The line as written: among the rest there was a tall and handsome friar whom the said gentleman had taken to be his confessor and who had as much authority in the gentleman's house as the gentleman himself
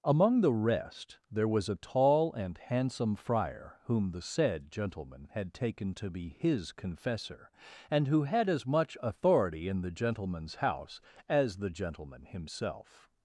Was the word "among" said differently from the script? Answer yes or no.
no